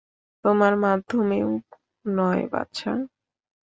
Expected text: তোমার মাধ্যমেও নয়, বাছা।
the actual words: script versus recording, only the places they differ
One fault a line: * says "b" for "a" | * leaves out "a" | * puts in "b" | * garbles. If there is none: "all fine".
all fine